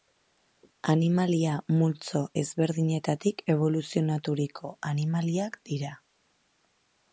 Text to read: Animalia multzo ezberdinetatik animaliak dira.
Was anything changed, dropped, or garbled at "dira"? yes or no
no